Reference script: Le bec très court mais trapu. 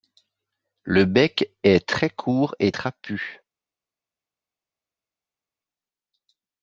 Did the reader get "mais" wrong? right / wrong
wrong